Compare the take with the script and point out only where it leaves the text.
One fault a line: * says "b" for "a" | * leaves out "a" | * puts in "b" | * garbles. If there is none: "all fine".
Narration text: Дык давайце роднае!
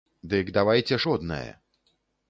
all fine